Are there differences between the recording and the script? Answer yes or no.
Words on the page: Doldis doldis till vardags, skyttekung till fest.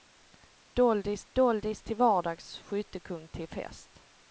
no